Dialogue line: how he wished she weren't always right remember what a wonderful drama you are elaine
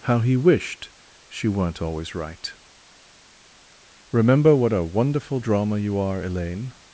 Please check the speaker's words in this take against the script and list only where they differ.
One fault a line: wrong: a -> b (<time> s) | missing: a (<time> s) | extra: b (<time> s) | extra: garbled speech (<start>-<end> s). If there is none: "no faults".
no faults